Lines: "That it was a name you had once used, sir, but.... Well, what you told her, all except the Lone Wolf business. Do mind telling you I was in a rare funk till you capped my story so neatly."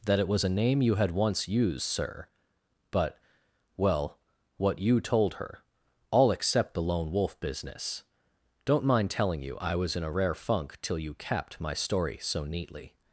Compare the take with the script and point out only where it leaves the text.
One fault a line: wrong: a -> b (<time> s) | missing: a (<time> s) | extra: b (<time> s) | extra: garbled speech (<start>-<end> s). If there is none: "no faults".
wrong: Do -> Don't (8.7 s)